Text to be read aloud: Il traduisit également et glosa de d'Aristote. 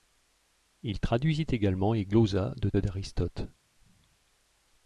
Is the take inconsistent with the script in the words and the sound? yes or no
no